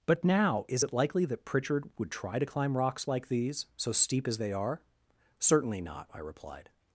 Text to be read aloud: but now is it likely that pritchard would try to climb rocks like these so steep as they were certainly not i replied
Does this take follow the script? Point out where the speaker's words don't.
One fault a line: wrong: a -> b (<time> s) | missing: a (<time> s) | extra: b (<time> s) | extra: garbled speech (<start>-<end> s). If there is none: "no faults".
wrong: were -> are (4.5 s)